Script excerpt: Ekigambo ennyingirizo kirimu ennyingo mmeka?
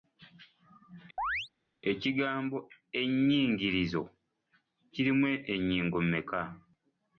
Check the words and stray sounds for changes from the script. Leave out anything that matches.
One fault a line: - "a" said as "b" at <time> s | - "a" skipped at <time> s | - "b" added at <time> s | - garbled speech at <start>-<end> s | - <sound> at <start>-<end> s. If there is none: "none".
- chirp at 1.2-1.5 s